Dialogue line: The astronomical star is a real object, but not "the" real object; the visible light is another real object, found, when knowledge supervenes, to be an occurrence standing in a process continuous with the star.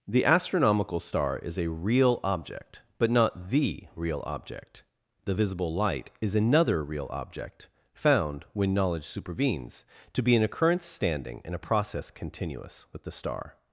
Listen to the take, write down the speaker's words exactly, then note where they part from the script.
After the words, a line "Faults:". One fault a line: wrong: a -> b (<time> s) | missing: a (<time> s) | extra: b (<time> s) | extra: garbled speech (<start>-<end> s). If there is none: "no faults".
The astronomical star is a real object, but not "the" real object; the visible light is another real object, found, when knowledge supervenes, to be an occurrence standing in a process continuous with the star.
Faults:
no faults